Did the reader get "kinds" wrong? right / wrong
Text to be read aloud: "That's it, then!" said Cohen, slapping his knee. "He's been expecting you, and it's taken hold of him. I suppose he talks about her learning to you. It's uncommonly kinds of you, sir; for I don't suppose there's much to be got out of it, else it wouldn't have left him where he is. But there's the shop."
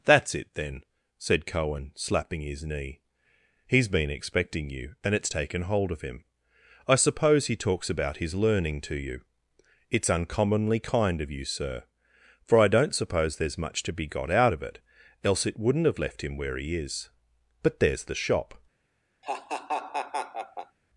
wrong